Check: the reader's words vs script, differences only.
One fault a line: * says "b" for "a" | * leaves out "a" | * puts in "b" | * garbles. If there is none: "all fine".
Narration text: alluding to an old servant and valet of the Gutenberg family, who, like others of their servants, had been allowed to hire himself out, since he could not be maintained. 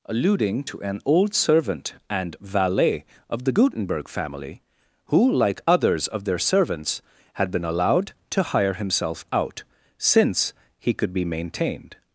* leaves out "not"